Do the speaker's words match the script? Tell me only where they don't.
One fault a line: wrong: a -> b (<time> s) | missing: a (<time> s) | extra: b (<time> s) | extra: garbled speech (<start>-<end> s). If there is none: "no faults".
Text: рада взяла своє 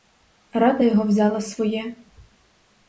extra: його (0.8 s)